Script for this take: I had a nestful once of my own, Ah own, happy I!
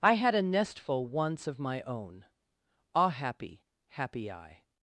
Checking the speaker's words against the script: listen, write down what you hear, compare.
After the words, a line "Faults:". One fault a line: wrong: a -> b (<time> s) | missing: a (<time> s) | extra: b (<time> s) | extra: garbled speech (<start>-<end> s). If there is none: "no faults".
I had a nestful once of my own, Ah happy, happy I!
Faults:
wrong: own -> happy (3.1 s)